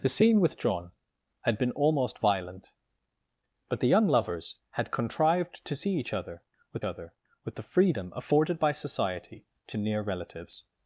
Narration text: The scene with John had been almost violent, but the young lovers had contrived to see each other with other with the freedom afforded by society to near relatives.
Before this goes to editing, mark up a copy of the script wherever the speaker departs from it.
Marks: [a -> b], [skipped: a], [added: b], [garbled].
The scene with John had been almost violent, but the young lovers had contrived to see each other with other with the freedom afforded by society to near relatives.